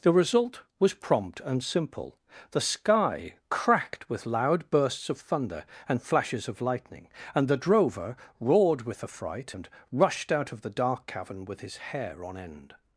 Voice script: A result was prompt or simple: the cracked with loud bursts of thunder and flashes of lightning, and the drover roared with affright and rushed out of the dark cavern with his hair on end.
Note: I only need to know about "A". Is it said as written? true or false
false